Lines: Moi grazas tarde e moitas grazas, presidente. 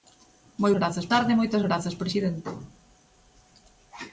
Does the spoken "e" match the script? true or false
true